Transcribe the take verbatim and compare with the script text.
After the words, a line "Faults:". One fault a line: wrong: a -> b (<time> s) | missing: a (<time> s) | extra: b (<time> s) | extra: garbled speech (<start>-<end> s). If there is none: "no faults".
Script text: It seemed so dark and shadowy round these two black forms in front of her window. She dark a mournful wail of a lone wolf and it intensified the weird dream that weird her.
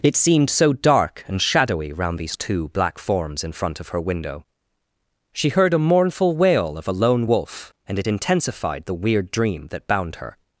It seemed so dark and shadowy round these two black forms in front of her window. She heard a mournful wail of a lone wolf and it intensified the weird dream that bound her.
Faults:
wrong: dark -> heard (5.5 s)
wrong: weird -> bound (9.9 s)